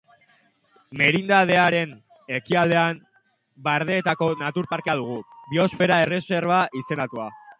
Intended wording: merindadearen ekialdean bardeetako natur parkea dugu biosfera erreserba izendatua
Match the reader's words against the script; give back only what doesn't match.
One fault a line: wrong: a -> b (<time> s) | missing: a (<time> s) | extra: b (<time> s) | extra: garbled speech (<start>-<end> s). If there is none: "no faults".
no faults